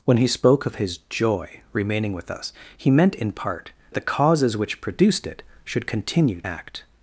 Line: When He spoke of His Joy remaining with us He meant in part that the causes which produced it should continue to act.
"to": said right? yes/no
no